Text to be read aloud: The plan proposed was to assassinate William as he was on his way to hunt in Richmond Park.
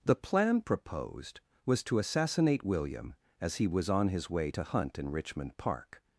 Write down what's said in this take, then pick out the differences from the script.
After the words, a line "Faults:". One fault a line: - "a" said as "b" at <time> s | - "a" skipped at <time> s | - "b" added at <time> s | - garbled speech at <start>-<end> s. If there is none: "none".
The plan proposed was to assassinate William as he was on his way to hunt in Richmond Park.
Faults:
none